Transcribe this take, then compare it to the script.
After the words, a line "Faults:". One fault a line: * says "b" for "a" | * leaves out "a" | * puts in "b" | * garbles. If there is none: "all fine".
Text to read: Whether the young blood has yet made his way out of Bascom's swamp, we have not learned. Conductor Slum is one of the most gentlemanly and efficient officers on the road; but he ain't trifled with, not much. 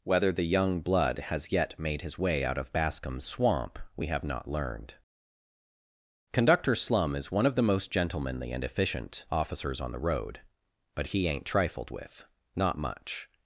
Whether the young blood has yet made his way out of Bascom's swamp, we have not learned. Conductor Slum is one of the most gentlemanly and efficient officers on the road; but he ain't trifled with, not much.
Faults:
all fine